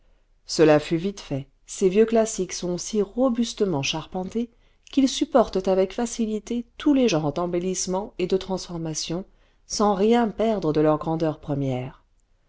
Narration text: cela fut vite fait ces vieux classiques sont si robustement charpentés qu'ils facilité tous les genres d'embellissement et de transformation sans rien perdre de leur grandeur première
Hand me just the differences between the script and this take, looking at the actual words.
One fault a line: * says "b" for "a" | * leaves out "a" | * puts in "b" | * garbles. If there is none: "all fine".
* puts in "supportent avec"